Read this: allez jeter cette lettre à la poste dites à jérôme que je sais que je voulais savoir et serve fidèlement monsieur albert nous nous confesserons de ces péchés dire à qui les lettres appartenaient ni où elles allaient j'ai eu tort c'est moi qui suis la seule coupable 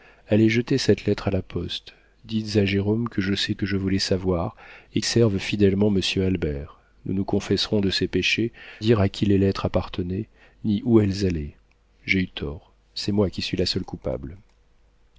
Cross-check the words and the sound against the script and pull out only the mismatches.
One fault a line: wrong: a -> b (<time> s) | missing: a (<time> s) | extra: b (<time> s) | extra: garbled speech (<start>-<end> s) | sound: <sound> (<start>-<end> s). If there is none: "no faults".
no faults